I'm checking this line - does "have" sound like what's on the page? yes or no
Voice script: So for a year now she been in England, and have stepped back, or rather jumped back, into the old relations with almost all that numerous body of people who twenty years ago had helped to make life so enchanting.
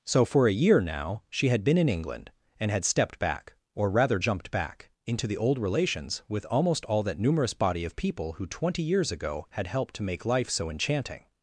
no